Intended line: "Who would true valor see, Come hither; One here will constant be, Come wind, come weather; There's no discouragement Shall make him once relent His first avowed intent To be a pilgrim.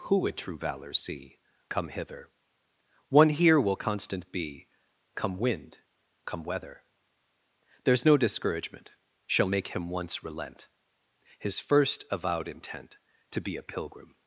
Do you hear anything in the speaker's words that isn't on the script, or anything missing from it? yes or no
no